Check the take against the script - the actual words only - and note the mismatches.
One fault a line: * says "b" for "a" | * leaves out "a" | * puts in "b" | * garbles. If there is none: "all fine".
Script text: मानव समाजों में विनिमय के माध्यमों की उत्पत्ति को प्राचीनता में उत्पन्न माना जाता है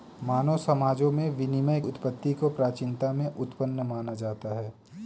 * leaves out "के माध्यमों की"